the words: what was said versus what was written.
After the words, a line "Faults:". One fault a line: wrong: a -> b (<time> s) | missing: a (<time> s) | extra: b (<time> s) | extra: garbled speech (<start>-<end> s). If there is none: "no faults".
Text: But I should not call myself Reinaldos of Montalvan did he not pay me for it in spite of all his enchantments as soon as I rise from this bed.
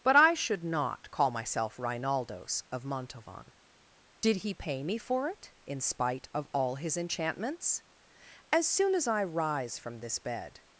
But I should not call myself Reinaldos of Montalvan did he pay me for it in spite of all his enchantments as soon as I rise from this bed.
Faults:
missing: not (4.5 s)